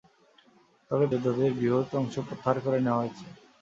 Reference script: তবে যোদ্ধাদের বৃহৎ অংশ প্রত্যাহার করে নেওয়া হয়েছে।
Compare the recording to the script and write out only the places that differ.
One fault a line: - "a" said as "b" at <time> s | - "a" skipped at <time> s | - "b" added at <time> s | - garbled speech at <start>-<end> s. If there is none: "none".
none